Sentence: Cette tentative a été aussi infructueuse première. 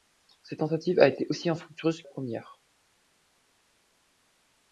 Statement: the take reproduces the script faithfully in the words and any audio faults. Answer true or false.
true